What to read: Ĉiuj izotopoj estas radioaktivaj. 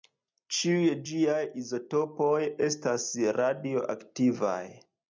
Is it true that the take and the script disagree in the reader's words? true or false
true